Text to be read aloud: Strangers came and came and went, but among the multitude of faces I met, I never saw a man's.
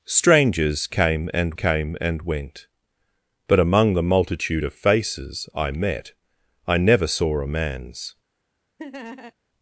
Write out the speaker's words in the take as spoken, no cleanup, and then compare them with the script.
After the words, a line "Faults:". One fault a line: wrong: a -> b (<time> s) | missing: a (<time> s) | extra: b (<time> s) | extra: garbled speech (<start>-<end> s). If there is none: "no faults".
Strangers came and came and went, but among the multitude of faces I met, I never saw a man's.
Faults:
no faults